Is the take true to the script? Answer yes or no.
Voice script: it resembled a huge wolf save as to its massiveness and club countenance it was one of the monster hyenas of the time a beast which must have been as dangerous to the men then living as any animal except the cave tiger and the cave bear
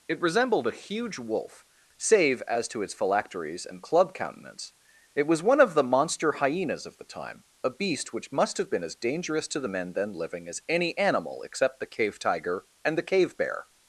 no